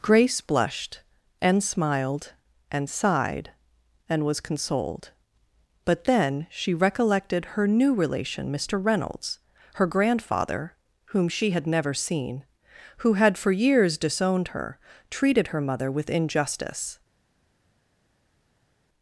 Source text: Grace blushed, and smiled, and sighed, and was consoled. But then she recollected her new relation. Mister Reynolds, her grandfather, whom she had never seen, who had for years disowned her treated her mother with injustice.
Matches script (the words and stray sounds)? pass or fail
pass